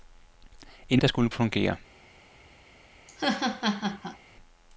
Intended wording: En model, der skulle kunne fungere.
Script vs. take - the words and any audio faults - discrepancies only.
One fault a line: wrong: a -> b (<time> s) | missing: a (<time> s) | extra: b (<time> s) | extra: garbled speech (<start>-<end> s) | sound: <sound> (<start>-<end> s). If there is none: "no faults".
missing: model (1.0 s)
missing: kunne (1.3 s)
sound: laugh (3.1-4.2 s)